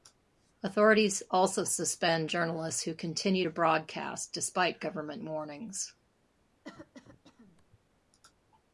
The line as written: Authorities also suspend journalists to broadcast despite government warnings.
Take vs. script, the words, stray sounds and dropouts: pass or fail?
fail